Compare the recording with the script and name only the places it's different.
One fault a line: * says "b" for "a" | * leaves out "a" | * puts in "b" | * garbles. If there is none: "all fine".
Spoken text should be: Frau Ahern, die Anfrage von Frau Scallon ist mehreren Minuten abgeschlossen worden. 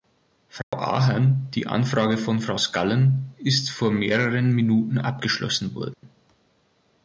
* puts in "vor"